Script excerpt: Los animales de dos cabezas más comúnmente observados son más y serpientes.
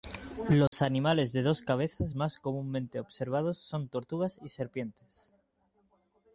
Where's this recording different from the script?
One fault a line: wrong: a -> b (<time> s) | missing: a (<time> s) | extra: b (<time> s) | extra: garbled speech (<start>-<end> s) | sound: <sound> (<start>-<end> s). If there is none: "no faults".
sound: dropout (0.7-0.7 s)
wrong: más -> tortugas (3.9 s)